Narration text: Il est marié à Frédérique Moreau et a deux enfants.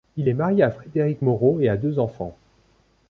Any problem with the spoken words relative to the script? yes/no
no